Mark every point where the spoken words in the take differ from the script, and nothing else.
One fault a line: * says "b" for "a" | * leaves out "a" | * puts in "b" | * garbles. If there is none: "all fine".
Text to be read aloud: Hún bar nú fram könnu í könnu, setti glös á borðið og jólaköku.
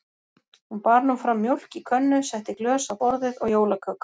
* says "mjólk" for "könnu"